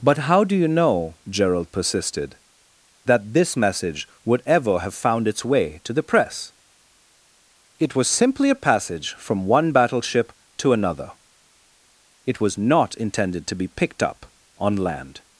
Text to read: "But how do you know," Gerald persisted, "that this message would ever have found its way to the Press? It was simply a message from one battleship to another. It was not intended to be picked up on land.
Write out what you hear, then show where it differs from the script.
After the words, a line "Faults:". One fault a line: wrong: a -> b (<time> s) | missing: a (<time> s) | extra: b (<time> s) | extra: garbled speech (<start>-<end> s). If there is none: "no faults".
"But how do you know," Gerald persisted, "that this message would ever have found its way to the Press? It was simply a passage from one battleship to another. It was not intended to be picked up on land.
Faults:
wrong: message -> passage (8.6 s)